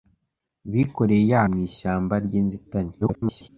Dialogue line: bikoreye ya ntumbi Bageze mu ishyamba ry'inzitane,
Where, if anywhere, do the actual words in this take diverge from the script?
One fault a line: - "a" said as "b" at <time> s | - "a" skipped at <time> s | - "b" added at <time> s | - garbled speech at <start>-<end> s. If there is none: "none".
- "ntumbi Bageze" skipped at 1.4 s
- garbled speech at 3.0-3.5 s